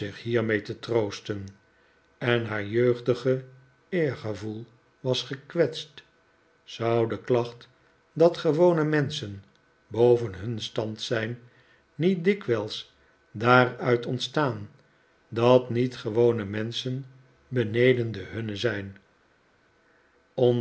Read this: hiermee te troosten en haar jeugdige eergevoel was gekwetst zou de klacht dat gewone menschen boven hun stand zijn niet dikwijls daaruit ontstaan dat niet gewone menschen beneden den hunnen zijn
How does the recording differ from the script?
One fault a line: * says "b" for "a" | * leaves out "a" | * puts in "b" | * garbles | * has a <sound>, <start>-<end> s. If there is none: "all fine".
all fine